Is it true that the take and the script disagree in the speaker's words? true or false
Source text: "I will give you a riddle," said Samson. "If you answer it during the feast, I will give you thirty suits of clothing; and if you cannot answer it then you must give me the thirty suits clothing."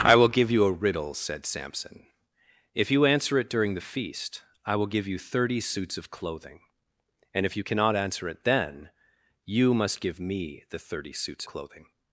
false